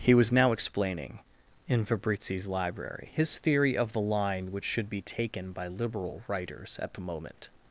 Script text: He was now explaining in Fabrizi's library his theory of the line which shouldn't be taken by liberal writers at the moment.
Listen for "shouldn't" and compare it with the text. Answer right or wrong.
wrong